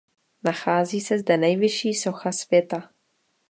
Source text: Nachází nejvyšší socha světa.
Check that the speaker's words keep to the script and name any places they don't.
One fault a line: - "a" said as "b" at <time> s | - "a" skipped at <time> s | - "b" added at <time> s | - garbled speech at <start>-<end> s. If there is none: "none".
- "se zde" added at 1.0 s